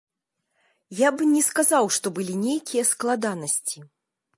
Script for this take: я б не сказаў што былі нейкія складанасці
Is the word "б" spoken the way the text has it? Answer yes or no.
yes